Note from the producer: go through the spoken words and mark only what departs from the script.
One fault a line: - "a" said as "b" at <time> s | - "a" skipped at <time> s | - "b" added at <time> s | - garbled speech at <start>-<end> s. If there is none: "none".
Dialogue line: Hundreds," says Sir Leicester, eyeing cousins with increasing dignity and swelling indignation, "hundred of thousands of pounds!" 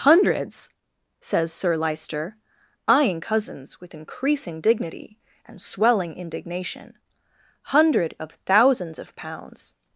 none